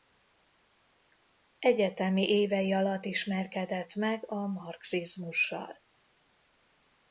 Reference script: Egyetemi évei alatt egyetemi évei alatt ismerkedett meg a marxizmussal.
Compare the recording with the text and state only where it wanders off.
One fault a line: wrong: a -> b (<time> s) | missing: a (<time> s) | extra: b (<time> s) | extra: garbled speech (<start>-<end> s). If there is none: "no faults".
missing: egyetemi évei alatt (3.0 s)